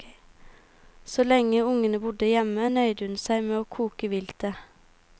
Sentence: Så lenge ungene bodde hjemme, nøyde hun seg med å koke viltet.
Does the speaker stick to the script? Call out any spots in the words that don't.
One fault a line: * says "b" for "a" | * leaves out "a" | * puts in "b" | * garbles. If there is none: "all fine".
all fine